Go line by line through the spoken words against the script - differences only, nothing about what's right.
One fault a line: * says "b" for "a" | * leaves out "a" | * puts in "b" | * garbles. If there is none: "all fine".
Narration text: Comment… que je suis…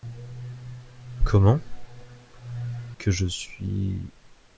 all fine